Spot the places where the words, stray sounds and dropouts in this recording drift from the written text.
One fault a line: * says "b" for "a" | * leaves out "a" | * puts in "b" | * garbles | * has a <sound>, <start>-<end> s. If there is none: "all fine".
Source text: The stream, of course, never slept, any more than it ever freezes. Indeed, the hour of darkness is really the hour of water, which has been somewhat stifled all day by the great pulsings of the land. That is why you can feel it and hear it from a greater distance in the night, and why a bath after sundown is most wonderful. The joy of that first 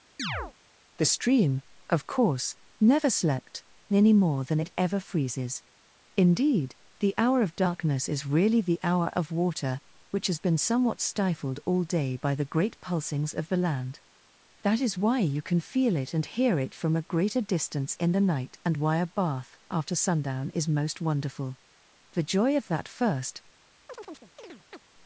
* has a chirp, 0.2-0.5 s
* has a chirp, 23.9-24.8 s